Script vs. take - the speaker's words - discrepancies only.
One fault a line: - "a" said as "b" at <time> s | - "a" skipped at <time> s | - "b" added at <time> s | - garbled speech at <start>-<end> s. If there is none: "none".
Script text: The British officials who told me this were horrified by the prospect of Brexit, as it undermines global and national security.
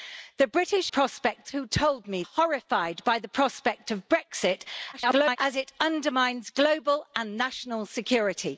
- "officials" said as "prospect" at 0.9 s
- "this were" skipped at 2.2 s
- garbled speech at 4.9-5.4 s